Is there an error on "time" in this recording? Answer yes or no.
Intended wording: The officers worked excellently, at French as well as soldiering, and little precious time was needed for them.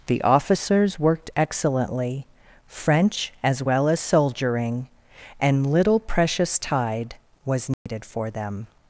yes